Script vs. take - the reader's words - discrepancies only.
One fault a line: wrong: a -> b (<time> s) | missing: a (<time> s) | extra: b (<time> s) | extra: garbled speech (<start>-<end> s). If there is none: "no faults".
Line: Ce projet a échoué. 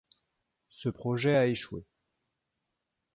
no faults